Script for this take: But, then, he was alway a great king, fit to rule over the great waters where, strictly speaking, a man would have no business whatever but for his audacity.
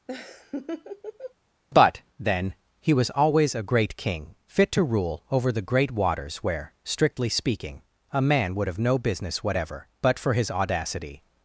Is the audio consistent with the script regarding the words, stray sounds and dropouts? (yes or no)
no